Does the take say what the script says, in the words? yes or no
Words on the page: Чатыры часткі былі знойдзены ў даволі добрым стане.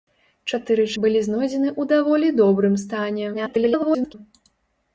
no